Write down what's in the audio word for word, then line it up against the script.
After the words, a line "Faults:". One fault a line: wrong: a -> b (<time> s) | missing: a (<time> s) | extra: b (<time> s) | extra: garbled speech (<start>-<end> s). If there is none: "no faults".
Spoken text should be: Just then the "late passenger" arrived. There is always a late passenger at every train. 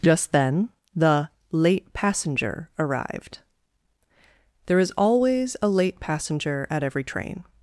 Just then the "late passenger" arrived. There is always a late passenger at every train.
Faults:
no faults